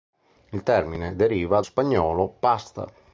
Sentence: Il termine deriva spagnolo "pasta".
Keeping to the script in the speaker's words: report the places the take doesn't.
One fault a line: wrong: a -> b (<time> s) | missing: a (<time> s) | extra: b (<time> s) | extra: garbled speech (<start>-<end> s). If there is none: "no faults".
no faults